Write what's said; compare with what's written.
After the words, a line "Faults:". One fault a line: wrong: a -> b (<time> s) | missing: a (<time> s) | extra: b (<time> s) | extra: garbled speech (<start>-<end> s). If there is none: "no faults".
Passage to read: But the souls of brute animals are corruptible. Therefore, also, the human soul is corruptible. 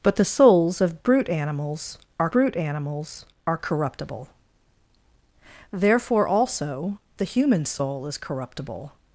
But the souls of brute animals are brute animals are corruptible. Therefore, also, the human soul is corruptible.
Faults:
extra: brute animals are (2.3 s)